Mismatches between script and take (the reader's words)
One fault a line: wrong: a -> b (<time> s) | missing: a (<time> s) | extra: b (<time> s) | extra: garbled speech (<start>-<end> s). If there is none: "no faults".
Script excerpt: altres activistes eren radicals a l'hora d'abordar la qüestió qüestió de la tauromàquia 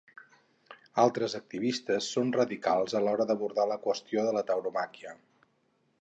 wrong: eren -> són (2.1 s)
missing: qüestió (4.2 s)